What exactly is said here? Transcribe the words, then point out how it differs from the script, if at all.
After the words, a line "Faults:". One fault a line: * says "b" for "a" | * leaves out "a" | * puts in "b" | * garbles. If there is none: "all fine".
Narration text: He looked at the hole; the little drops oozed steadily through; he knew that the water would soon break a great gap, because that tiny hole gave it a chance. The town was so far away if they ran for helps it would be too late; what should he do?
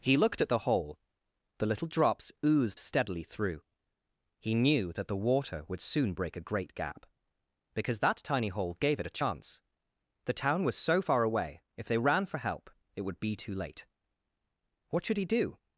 He looked at the hole; the little drops oozed steadily through; he knew that the water would soon break a great gap, because that tiny hole gave it a chance. The town was so far away if they ran for help it would be too late; what should he do?
Faults:
* says "help" for "helps"